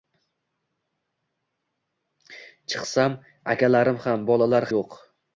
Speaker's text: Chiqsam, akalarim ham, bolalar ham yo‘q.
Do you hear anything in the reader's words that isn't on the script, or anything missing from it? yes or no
yes